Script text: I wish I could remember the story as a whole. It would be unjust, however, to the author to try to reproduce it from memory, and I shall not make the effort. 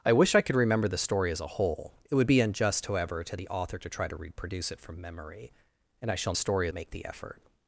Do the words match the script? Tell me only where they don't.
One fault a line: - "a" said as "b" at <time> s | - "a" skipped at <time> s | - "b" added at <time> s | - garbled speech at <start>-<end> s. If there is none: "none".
- "not" said as "story" at 6.3 s